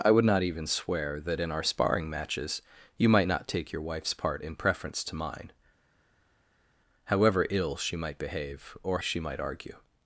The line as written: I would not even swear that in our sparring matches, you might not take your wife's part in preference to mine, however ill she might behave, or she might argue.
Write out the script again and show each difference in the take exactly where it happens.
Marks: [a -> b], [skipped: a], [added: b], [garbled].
I would not even swear that in our sparring matches, you might not take your wife's part in preference to mine, however ill she might behave, or she might argue.